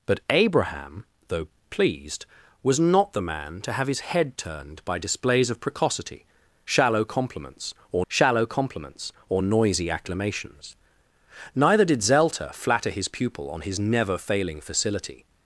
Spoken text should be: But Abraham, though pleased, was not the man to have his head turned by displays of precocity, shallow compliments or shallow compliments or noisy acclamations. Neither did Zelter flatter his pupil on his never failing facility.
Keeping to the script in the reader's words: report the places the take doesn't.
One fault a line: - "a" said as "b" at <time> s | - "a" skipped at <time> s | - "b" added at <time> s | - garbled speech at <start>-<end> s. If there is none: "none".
none